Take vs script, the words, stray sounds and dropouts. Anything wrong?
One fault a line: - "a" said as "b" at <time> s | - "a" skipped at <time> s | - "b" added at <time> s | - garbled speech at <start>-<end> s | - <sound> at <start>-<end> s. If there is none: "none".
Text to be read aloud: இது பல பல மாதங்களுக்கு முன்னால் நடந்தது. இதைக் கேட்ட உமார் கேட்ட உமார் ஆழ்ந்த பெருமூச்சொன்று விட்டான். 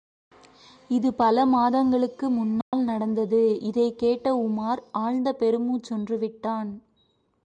- "பல" skipped at 1.5 s
- dropout at 2.6-2.7 s
- "கேட்ட உமார்" skipped at 4.8 s